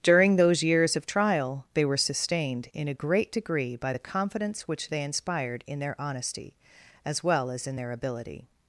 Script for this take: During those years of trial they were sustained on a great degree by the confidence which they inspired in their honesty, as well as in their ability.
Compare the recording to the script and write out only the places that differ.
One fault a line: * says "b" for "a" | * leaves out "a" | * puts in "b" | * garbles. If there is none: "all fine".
* says "in" for "on"